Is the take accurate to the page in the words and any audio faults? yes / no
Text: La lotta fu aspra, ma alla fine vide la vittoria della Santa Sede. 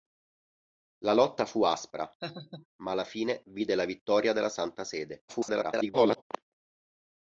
no